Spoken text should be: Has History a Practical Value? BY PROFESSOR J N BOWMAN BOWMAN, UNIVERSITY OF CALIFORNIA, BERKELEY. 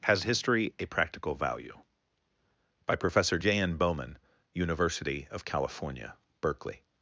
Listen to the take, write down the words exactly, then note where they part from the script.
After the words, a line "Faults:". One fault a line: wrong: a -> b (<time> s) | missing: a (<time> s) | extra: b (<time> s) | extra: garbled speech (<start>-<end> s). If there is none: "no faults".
Has History a Practical Value? BY PROFESSOR J N BOWMAN, UNIVERSITY OF CALIFORNIA, BERKELEY.
Faults:
missing: BOWMAN (4.2 s)